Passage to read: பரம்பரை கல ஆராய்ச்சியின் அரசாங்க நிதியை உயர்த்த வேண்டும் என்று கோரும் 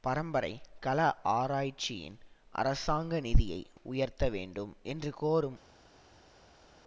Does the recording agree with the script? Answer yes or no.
yes